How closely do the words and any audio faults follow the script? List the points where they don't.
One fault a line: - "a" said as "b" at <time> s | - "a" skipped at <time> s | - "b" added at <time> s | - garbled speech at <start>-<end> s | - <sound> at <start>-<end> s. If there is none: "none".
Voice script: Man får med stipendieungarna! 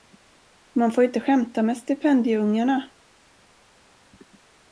- "inte skämta" added at 1.0 s